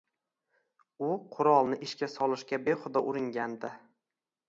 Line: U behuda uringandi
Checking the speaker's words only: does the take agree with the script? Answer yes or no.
no